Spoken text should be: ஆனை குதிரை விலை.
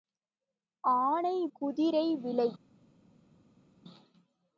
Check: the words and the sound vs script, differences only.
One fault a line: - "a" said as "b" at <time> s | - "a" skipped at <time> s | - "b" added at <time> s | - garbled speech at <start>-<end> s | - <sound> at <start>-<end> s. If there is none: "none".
none